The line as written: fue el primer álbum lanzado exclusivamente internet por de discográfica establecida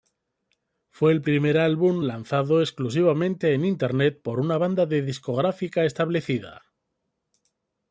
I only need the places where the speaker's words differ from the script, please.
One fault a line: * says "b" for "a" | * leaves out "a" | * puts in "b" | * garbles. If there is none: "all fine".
* puts in "en"
* puts in "una banda"